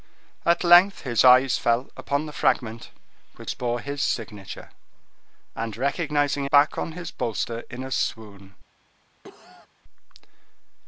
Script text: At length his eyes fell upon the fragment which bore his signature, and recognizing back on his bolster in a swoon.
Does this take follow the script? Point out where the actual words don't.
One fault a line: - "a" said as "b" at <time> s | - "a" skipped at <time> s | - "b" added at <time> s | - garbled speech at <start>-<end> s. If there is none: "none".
none